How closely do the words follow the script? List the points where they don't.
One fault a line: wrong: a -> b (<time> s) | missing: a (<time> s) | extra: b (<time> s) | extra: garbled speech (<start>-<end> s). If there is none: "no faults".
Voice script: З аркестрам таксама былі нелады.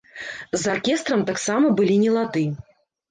no faults